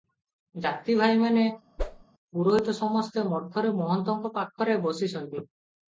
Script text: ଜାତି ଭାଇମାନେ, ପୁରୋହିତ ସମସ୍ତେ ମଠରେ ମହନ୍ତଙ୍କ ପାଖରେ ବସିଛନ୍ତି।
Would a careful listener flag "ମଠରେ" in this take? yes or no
no